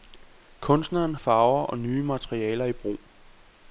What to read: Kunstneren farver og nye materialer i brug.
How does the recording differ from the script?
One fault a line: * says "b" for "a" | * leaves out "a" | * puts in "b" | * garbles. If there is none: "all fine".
all fine